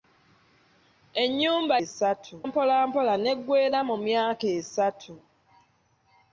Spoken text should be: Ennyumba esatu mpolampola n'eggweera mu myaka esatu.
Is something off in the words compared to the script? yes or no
no